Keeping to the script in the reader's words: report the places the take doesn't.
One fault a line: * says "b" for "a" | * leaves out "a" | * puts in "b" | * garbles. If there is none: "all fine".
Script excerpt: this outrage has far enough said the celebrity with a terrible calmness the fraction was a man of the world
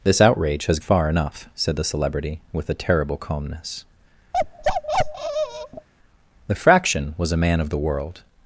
all fine